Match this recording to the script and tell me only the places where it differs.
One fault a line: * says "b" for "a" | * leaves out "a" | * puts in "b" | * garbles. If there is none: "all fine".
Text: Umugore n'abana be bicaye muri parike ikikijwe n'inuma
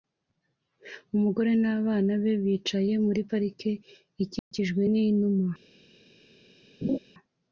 all fine